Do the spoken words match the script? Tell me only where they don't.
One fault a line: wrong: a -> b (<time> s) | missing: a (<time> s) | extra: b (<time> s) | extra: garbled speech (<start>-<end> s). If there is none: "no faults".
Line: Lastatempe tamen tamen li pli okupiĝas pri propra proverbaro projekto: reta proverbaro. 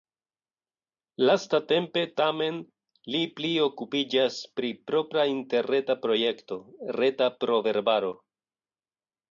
missing: tamen (2.6 s)
wrong: proverbaro -> interreta (5.3 s)